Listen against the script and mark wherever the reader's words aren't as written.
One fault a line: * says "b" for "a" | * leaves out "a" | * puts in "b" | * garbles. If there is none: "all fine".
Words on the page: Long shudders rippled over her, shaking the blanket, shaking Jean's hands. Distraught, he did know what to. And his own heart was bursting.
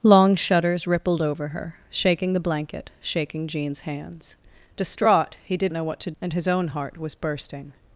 all fine